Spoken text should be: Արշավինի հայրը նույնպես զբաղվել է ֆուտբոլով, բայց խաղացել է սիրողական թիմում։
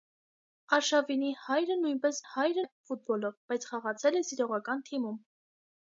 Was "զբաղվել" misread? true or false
true